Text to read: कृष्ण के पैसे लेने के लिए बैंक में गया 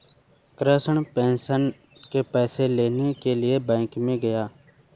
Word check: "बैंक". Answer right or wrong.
right